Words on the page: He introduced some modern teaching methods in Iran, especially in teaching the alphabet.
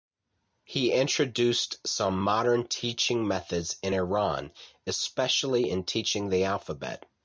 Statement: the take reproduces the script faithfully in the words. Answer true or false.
true